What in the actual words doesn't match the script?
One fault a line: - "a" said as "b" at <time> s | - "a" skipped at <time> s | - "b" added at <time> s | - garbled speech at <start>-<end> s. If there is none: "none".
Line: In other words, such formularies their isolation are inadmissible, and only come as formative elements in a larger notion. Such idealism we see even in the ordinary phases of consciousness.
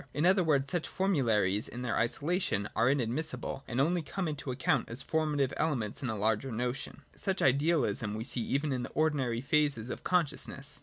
- "in" added at 1.7 s
- "into account" added at 4.3 s